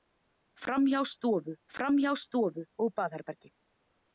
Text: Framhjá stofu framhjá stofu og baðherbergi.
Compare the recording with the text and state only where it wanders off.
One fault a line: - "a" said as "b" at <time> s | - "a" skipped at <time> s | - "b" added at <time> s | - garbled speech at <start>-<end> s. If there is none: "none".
none